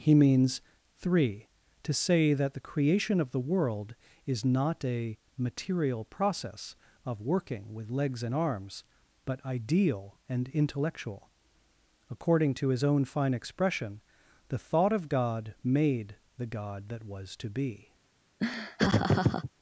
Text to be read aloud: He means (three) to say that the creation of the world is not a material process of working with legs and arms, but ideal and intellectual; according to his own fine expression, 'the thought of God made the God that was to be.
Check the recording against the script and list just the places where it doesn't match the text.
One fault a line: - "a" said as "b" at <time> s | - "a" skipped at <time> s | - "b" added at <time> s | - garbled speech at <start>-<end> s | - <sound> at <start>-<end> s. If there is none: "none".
- laugh at 18.4-19.5 s